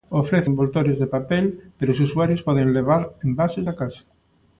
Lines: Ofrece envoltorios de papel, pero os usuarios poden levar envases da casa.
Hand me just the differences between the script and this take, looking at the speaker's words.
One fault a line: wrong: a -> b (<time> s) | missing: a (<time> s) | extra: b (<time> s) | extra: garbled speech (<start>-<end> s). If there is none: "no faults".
no faults